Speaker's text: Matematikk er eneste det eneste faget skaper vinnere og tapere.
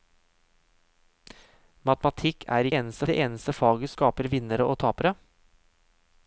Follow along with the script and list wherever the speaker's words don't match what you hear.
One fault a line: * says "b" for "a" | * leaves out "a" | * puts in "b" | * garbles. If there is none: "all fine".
all fine